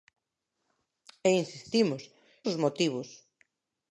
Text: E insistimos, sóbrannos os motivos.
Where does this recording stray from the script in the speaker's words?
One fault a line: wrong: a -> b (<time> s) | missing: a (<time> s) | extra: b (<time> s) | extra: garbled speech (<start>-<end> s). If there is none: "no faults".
missing: sóbrannos (2.0 s)